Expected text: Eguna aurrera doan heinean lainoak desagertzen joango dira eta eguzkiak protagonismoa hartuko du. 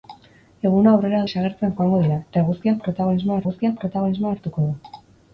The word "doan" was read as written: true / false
false